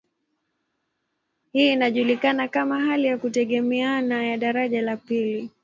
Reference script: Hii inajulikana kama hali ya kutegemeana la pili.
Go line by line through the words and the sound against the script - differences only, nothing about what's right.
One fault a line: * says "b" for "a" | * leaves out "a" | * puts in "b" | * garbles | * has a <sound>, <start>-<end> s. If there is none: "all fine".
* puts in "ya daraja"